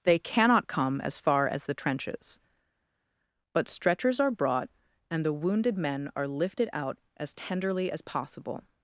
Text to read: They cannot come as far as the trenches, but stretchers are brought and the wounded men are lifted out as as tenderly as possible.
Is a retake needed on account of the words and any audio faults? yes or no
yes